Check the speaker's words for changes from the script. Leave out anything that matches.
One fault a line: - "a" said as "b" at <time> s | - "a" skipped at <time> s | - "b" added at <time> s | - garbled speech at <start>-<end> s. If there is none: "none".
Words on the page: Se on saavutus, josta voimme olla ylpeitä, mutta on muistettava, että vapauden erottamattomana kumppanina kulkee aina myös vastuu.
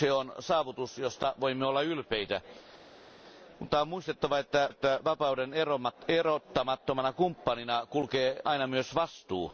- "että" added at 4.7 s